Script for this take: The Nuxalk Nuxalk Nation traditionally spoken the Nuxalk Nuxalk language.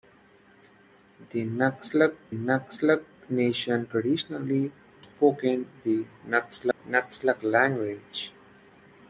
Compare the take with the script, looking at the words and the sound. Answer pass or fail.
fail